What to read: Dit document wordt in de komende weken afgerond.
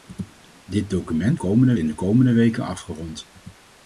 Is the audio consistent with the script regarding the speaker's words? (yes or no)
no